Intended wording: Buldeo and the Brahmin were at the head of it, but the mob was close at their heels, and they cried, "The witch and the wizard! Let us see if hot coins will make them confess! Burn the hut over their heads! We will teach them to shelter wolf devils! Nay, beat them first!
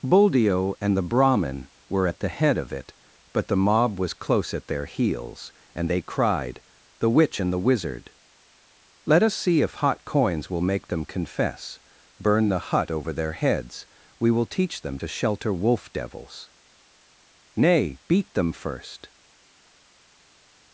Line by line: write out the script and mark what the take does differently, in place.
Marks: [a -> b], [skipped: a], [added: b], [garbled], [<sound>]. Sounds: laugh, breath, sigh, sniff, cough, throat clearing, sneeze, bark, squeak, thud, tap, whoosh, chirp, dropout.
Buldeo and the Brahmin were at the head of it, but the mob was close at their heels, and they cried, "The witch and the wizard! Let us see if hot coins will make them confess! Burn the hut over their heads! We will teach them to shelter wolf devils! Nay, beat them first!